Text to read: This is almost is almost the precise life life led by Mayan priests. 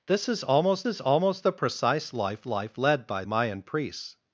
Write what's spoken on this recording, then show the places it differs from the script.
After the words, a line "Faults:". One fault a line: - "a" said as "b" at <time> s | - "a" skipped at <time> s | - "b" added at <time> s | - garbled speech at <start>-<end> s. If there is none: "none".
This is almost is almost the precise life life led by Mayan priests.
Faults:
none